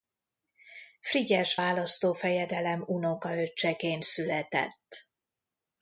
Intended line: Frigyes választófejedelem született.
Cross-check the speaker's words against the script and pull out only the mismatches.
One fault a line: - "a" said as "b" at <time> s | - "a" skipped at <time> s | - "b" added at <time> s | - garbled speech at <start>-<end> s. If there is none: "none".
- "unokaöccseként" added at 2.9 s